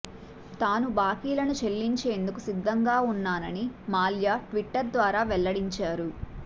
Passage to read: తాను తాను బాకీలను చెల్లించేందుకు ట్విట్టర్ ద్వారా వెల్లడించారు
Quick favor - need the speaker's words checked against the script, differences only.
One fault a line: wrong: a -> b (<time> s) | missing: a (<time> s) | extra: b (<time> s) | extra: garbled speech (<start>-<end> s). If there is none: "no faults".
missing: తాను (0.9 s)
extra: సిద్ధంగా ఉన్నానని మాల్యా (2.5 s)